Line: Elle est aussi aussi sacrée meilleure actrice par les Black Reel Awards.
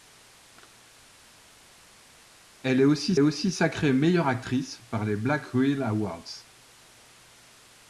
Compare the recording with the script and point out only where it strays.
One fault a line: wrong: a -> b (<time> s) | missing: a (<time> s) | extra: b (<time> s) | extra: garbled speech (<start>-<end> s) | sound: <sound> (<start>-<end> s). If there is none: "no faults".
no faults